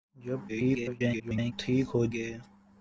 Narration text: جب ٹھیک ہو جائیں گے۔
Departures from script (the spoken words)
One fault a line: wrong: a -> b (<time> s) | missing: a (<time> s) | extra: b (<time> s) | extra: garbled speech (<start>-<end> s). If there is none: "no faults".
extra: garbled speech (0.5-1.5 s)
missing: جائیں (2.0 s)